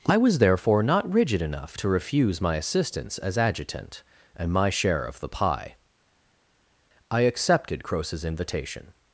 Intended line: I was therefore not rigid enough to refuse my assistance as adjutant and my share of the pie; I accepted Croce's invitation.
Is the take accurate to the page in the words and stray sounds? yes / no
yes